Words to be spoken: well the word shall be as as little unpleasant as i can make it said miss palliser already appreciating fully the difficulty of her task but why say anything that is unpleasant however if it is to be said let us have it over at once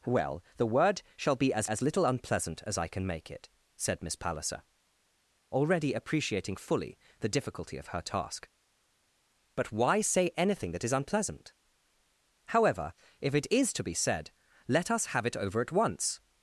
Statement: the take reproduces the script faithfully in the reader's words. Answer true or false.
true